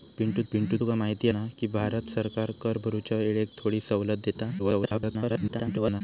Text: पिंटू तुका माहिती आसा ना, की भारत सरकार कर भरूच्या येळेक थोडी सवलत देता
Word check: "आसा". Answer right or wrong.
wrong